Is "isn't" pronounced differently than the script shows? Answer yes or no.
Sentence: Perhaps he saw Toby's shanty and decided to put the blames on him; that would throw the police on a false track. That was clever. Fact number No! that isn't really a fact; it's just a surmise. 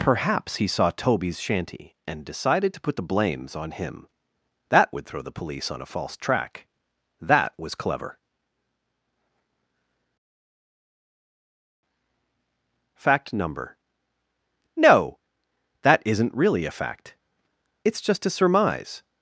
no